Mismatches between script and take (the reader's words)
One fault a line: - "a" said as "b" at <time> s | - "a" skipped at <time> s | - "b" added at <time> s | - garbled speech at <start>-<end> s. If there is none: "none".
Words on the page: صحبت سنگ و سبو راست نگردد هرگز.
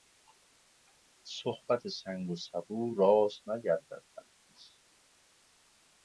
none